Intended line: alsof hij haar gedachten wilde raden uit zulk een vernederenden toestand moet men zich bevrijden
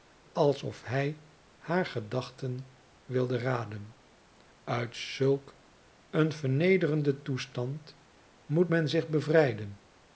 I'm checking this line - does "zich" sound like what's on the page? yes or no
yes